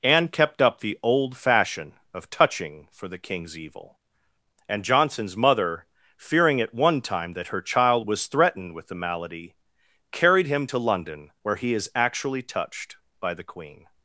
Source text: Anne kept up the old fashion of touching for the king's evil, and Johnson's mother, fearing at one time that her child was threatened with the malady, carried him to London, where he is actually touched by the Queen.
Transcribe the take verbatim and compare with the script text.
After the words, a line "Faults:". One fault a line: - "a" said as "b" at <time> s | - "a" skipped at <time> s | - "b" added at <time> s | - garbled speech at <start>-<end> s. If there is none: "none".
Anne kept up the old fashion of touching for the king's evil, and Johnson's mother, fearing at one time that her child was threatened with the malady, carried him to London, where he is actually touched by the Queen.
Faults:
none